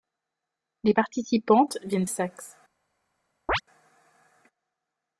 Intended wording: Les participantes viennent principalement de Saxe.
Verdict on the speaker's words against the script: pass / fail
fail